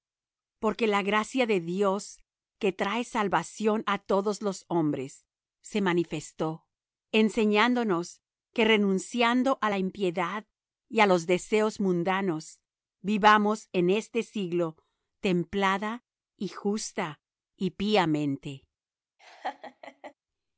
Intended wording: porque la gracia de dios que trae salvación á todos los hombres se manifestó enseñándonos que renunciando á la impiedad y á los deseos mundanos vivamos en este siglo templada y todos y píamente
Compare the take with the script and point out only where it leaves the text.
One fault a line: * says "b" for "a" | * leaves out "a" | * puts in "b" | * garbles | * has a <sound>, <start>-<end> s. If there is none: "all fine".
* says "justa" for "todos"
* has a laugh, 19.2-20.1 s